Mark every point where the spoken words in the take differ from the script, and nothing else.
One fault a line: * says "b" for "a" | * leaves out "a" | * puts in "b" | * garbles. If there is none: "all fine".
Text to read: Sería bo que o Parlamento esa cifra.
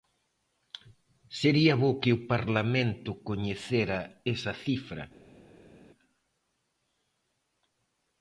* puts in "coñecera"